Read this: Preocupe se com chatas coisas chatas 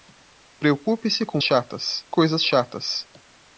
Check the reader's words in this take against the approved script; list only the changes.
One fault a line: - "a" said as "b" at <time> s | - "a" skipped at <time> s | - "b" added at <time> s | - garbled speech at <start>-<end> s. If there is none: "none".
none